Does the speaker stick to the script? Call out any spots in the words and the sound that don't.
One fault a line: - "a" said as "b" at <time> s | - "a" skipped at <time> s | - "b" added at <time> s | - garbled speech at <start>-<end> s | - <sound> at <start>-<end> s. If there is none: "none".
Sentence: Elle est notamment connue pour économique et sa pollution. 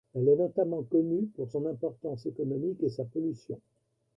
- "son importance" added at 1.5 s